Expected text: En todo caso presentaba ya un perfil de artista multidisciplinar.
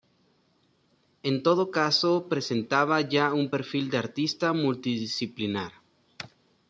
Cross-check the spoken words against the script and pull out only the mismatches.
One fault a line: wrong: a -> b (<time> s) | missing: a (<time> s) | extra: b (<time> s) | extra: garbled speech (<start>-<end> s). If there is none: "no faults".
no faults